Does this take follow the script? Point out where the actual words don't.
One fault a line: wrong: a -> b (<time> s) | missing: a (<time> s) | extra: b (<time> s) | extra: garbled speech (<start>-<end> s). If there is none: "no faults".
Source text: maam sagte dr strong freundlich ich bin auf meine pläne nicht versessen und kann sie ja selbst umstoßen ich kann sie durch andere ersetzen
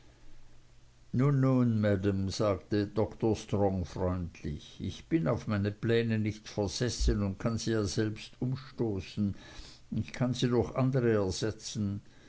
no faults